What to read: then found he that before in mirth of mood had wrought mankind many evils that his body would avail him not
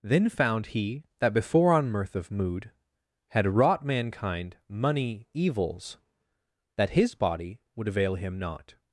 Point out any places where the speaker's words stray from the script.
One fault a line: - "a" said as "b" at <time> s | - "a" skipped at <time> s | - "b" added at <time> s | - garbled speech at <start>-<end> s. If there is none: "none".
- "in" said as "on" at 1.7 s
- "many" said as "money" at 4.7 s